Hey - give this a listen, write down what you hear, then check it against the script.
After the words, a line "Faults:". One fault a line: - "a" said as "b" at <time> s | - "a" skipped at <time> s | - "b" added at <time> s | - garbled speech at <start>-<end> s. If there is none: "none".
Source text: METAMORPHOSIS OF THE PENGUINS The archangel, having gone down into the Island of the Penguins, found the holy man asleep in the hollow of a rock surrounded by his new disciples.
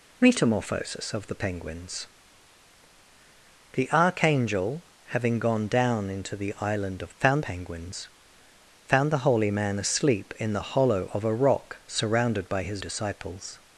METAMORPHOSIS OF THE PENGUINS The archangel, having gone down into the Island of found Penguins, found the holy man asleep in the hollow of a rock surrounded by his disciples.
Faults:
- "the" said as "found" at 7.2 s
- "new" skipped at 12.8 s